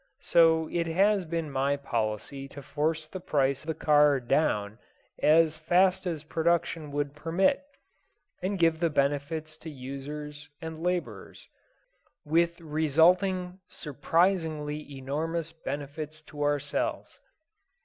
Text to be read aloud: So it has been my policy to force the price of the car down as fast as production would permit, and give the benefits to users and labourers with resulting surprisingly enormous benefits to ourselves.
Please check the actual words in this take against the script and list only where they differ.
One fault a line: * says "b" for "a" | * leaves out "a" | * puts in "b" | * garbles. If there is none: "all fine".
* leaves out "of"